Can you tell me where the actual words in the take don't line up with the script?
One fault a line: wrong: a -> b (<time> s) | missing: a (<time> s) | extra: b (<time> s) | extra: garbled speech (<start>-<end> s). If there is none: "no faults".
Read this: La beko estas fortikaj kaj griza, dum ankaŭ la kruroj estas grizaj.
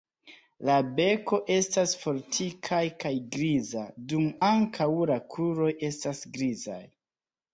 no faults